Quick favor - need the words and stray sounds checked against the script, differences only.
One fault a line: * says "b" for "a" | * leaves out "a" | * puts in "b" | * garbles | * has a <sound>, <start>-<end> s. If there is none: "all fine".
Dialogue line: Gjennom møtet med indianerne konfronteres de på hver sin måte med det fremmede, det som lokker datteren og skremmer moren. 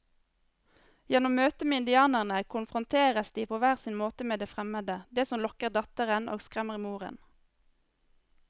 all fine